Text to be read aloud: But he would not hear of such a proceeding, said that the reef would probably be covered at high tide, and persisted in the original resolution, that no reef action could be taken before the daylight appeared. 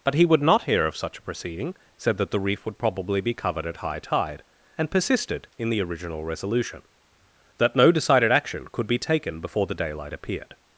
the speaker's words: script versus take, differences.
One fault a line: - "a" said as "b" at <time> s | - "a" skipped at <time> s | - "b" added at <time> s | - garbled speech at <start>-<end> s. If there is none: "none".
- "reef" said as "decided" at 7.9 s